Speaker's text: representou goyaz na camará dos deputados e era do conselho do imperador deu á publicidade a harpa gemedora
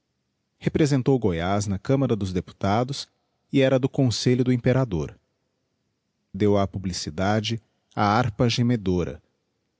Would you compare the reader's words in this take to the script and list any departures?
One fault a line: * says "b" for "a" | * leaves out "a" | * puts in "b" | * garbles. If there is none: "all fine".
all fine